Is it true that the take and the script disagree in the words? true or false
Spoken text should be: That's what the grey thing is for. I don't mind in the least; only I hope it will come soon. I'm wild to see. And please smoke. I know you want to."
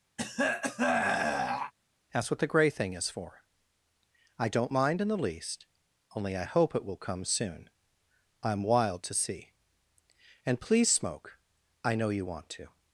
false